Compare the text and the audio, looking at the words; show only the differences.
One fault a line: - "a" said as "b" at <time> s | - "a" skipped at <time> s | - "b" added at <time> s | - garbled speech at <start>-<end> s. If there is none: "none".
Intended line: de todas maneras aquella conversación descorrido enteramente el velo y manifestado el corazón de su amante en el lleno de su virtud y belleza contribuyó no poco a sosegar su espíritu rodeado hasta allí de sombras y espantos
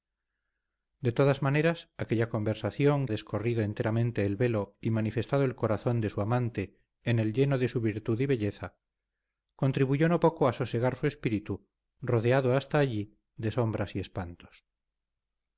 none